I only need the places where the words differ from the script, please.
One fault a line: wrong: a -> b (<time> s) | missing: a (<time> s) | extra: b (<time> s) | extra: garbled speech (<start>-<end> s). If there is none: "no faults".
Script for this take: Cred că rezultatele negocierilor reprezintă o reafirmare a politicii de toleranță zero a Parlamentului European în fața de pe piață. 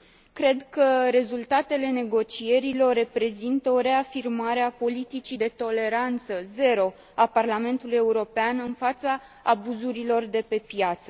extra: abuzurilor (9.4 s)